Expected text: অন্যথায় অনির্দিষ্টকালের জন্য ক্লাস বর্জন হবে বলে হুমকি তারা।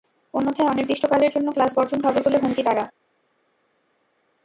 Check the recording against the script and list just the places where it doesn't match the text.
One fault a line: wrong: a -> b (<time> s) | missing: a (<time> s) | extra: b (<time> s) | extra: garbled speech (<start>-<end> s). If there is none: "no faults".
no faults